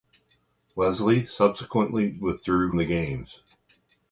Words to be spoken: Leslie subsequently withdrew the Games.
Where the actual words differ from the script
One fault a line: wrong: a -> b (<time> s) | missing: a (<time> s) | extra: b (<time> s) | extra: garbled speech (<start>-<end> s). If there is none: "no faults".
no faults